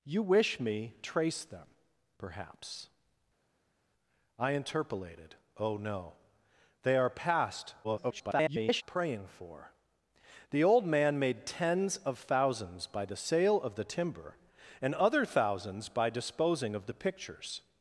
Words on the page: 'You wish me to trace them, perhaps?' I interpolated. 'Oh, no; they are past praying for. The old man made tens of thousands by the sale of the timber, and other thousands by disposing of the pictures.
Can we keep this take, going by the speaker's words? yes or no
no